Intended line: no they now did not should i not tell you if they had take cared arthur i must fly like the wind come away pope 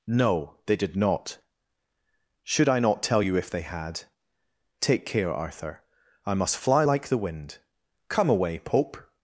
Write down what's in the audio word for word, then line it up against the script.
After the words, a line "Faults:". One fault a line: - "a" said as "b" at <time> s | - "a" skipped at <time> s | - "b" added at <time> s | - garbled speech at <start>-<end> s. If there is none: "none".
no they did not should i not tell you if they had take care arthur i must fly like the wind come away pope
Faults:
- "now" skipped at 0.8 s
- "cared" said as "care" at 5.0 s